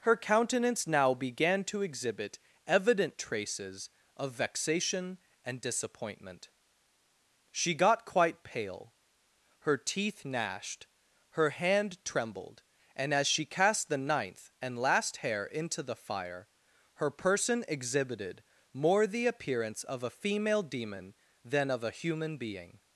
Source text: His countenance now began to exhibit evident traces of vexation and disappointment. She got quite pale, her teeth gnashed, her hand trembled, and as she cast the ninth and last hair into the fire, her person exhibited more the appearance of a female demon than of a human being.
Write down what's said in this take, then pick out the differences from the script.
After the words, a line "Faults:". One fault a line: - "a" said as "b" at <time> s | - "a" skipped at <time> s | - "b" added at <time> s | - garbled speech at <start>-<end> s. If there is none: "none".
Her countenance now began to exhibit evident traces of vexation and disappointment. She got quite pale, her teeth gnashed, her hand trembled, and as she cast the ninth and last hair into the fire, her person exhibited more the appearance of a female demon than of a human being.
Faults:
- "His" said as "Her" at 0.0 s